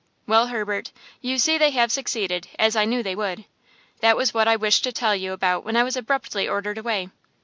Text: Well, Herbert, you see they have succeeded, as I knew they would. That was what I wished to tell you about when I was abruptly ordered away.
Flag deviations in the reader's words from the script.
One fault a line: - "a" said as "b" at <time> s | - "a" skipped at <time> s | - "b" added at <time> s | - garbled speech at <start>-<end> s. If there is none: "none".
none